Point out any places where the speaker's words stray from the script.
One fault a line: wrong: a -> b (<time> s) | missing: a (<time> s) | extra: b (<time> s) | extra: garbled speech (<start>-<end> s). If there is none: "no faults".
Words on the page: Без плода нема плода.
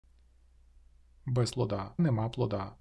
no faults